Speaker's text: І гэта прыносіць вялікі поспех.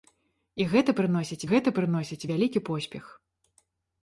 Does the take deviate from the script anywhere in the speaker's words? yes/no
yes